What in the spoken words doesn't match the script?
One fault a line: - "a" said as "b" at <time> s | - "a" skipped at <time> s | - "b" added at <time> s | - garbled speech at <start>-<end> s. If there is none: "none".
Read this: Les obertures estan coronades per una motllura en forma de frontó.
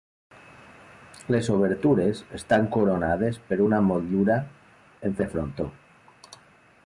- "forma" skipped at 5.2 s